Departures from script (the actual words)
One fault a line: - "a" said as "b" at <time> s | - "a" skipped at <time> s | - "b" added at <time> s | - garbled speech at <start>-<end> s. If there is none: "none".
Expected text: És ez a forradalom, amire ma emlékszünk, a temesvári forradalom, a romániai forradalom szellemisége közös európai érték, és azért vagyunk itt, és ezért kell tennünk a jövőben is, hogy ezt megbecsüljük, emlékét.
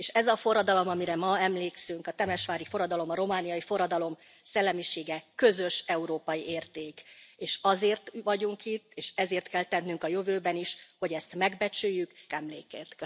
none